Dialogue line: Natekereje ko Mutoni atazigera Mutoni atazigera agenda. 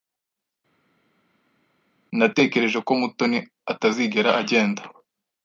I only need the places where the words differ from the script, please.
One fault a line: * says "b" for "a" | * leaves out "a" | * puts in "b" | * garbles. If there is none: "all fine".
* leaves out "Mutoni atazigera"